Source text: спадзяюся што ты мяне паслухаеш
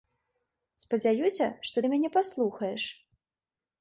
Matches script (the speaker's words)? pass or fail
pass